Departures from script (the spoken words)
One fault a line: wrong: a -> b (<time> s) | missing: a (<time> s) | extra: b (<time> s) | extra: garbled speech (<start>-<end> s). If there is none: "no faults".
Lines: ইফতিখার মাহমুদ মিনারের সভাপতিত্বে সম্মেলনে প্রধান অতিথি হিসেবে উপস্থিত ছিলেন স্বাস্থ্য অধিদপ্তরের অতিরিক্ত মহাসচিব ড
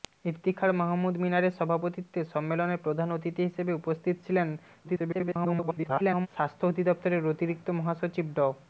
extra: garbled speech (4.8-6.3 s)